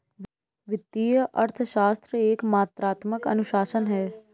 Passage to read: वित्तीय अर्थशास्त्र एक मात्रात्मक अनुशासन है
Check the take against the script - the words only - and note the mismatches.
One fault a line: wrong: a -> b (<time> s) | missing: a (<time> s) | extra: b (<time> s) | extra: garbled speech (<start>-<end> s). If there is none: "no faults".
no faults